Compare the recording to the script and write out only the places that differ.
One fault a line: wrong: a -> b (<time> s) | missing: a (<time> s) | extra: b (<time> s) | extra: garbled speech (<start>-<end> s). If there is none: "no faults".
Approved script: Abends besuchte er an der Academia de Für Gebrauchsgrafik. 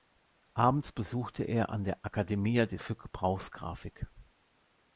no faults